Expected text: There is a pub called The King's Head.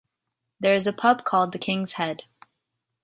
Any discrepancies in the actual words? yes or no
no